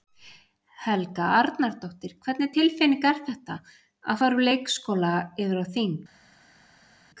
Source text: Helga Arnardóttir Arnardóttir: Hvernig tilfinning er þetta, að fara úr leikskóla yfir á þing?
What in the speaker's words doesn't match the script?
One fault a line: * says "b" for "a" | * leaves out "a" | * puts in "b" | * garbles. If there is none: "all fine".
* leaves out "Arnardóttir"